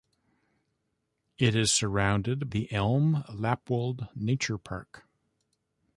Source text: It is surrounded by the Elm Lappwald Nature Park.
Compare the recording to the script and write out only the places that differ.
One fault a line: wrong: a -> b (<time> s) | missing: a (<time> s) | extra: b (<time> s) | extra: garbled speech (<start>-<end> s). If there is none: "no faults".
missing: by (2.5 s)